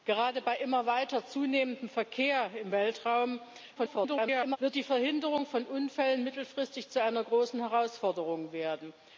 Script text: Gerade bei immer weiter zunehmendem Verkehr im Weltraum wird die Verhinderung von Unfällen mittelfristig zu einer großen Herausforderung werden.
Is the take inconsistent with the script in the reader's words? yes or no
yes